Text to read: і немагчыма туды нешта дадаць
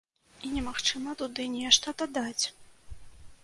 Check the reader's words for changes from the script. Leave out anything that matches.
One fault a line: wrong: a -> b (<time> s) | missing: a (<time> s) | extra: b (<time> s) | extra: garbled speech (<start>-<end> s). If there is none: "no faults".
no faults